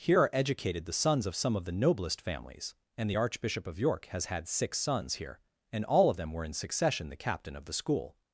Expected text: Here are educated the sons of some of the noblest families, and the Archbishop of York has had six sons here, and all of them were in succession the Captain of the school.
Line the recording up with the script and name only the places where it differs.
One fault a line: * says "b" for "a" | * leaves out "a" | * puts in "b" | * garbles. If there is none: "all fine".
all fine